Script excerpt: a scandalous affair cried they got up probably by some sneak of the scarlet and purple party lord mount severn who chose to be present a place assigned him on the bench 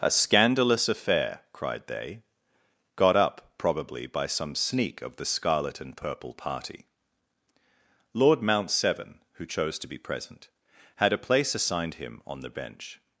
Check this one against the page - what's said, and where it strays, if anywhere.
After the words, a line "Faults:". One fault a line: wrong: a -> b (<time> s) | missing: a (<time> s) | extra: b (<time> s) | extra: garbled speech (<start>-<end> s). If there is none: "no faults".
a scandalous affair cried they got up probably by some sneak of the scarlet and purple party lord mount severn who chose to be present had a place assigned him on the bench
Faults:
extra: had (10.9 s)